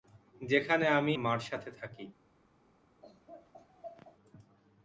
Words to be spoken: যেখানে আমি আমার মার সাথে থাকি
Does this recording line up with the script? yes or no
no